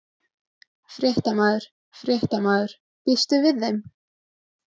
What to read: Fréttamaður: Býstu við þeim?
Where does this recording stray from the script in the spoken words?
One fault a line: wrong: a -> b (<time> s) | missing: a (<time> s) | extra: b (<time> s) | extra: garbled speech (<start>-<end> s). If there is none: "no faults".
extra: fréttamaður (2.0 s)